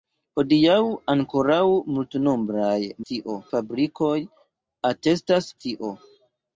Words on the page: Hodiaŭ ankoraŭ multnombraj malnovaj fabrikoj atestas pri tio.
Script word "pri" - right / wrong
wrong